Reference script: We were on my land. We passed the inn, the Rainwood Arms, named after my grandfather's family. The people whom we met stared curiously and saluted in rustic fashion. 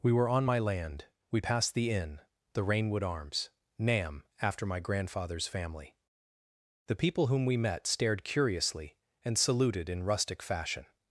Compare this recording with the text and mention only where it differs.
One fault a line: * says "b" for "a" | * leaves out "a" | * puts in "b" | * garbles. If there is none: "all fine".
* says "nam" for "named"